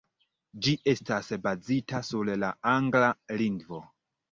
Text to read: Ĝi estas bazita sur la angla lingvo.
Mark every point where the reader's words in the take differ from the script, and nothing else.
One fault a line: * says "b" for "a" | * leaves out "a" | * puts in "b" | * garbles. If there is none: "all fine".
all fine